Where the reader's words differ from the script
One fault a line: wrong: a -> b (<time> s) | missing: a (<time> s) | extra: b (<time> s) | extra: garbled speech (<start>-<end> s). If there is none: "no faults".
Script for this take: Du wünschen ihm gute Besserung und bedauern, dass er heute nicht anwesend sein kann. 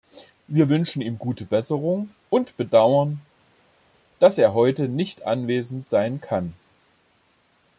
wrong: Du -> Wir (0.5 s)